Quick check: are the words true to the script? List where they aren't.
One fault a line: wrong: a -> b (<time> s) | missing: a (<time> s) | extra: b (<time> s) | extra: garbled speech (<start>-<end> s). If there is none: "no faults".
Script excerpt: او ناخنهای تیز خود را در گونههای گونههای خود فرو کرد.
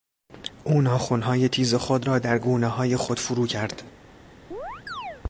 missing: گونههای (3.0 s)